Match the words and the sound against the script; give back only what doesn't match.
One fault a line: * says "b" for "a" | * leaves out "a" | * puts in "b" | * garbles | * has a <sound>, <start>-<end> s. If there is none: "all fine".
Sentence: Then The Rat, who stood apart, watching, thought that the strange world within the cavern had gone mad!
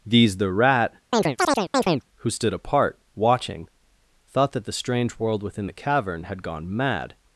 * says "These" for "Then"
* has a chirp, 1.1-2.0 s